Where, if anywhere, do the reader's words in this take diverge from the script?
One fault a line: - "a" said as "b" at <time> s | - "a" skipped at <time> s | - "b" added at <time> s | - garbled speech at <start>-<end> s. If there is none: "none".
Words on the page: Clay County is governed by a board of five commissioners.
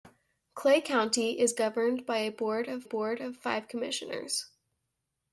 - "board of" added at 2.8 s